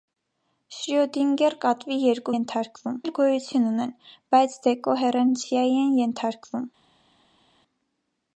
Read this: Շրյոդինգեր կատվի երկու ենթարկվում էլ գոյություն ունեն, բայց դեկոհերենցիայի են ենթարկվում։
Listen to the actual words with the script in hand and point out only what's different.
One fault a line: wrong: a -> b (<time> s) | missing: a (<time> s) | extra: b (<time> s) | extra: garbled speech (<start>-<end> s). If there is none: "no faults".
no faults